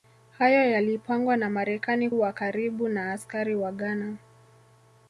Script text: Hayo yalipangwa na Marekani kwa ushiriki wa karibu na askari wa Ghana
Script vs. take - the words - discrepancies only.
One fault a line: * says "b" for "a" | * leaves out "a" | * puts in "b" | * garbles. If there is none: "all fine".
* leaves out "kwa ushiriki"